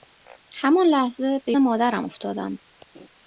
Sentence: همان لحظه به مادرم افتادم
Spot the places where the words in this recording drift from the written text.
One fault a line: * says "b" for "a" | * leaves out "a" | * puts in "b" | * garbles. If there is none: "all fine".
all fine